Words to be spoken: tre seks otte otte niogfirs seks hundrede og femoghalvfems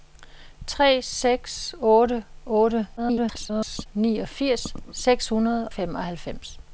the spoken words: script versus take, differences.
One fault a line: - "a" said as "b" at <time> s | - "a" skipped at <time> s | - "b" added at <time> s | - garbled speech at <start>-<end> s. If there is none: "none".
- garbled speech at 3.0-3.9 s
- "og" skipped at 5.7 s